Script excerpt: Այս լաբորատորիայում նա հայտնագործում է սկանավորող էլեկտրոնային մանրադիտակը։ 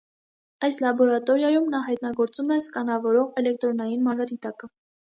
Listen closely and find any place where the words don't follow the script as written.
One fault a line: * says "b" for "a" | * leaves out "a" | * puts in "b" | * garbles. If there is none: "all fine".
all fine